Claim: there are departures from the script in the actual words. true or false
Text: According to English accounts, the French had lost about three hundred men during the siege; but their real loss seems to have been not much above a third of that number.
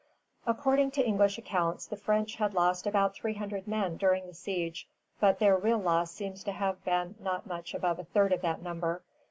false